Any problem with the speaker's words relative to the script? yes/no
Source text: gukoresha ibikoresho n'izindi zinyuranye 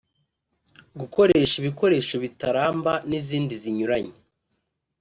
yes